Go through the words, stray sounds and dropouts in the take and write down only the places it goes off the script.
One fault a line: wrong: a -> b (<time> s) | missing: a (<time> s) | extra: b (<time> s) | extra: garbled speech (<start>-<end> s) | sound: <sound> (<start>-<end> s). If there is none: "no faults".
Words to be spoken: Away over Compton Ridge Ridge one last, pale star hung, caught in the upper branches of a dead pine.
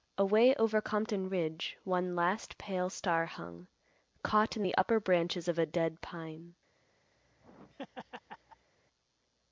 missing: Ridge (1.8 s)
sound: laugh (7.2-8.7 s)